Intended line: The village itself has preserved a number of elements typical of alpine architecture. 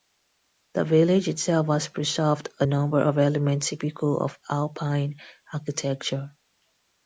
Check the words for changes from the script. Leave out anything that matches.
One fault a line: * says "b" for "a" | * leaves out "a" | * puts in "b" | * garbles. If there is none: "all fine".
all fine